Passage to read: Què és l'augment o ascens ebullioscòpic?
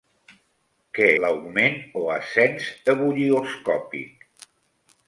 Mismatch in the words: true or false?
true